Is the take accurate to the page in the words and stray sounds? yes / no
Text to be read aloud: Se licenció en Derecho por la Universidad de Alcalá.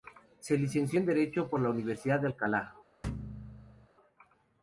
no